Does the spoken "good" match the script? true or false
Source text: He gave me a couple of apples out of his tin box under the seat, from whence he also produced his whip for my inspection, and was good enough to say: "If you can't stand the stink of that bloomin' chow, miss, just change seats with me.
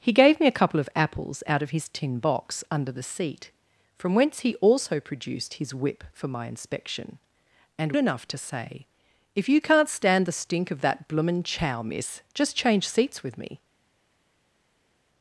false